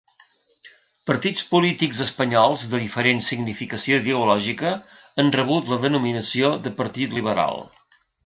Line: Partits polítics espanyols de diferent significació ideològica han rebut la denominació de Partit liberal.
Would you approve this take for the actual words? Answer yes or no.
yes